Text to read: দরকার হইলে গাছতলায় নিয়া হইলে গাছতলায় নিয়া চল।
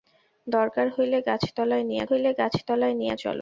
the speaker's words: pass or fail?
pass